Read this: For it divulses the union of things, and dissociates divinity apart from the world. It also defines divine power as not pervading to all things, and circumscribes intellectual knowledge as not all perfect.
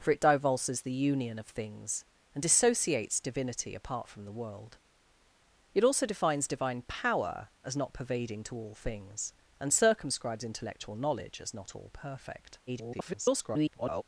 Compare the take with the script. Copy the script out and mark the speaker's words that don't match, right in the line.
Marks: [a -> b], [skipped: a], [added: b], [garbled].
For it divulses the union of things, and dissociates divinity apart from the world. It also defines divine power as not pervading to all things, and circumscribes intellectual knowledge as not all perfect. [garbled]